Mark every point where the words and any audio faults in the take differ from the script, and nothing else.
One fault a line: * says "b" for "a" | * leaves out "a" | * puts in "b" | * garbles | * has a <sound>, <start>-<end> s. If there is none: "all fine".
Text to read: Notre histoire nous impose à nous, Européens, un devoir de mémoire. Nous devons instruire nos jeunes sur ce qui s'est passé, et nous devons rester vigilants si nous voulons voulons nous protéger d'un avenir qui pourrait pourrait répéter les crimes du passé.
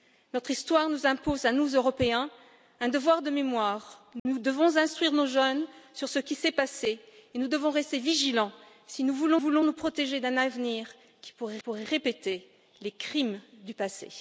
* has a dropout, 4.2-4.3 s